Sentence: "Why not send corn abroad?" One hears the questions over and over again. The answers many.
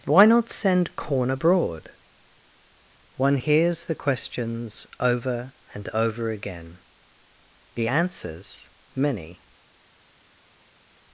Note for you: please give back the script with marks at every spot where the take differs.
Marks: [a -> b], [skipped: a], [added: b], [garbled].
"Why not send corn abroad?" One hears the questions over and over again. The answers many.